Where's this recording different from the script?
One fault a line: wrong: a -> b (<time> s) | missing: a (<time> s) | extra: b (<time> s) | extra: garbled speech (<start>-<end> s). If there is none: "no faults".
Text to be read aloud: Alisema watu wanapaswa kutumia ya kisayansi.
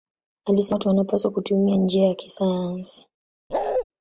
extra: njia (1.8 s)